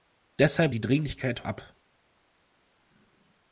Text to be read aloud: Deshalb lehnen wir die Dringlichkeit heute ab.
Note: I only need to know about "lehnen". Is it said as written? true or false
false